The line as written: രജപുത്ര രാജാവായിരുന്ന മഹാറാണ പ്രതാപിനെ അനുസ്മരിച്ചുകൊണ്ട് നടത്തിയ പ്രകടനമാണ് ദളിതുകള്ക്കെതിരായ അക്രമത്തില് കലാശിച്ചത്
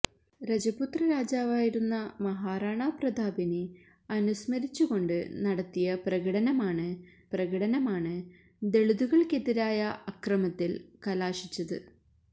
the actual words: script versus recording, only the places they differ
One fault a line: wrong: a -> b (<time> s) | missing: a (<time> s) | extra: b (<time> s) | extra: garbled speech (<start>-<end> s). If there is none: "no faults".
extra: പ്രകടനമാണ് (7.3 s)